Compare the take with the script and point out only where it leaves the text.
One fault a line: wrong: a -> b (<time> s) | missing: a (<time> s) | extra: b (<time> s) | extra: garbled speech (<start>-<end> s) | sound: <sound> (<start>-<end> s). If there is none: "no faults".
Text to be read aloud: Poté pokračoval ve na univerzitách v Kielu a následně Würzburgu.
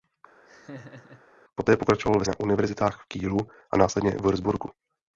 sound: laugh (0.5-1.2 s)